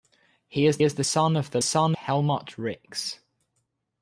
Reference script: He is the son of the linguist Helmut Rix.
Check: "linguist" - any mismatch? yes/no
yes